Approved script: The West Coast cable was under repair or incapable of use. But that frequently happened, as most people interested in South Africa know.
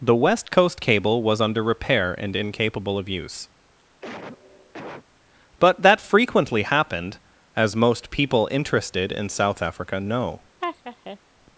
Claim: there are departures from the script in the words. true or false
true